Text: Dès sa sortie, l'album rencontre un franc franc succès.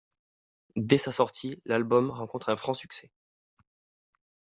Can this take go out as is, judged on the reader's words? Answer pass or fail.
fail